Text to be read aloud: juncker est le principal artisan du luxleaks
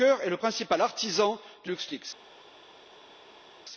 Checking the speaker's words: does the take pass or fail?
pass